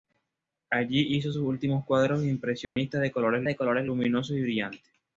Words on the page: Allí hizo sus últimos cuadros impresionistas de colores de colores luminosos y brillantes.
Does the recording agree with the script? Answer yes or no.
yes